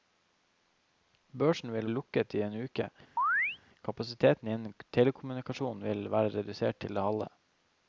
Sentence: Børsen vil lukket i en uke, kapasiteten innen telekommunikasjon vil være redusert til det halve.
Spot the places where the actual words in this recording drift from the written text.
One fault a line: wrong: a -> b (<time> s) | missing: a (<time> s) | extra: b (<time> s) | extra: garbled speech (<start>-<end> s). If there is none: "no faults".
no faults